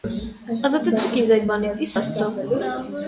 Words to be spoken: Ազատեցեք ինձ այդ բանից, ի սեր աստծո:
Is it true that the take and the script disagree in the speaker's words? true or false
true